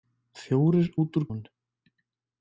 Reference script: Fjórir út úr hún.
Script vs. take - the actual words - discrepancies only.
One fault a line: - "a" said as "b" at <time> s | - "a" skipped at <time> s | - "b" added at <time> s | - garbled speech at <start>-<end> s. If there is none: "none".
none